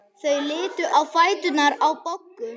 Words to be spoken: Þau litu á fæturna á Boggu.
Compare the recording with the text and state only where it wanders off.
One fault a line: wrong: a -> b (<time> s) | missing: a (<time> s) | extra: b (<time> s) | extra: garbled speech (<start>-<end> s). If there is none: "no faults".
no faults